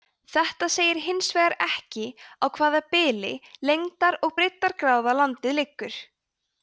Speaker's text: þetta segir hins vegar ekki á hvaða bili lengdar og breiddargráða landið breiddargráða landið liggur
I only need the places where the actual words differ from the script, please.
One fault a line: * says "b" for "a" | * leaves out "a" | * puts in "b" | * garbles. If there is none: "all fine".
* leaves out "breiddargráða landið"